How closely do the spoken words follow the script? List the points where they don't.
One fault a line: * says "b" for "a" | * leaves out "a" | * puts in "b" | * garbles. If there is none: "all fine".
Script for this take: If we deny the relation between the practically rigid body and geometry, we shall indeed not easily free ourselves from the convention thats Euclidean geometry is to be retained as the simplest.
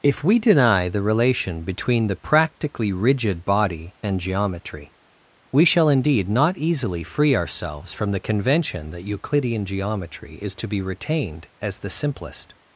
* says "that" for "thats"